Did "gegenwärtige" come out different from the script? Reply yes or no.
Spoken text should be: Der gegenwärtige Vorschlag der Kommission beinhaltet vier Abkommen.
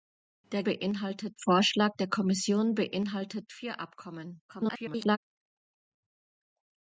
yes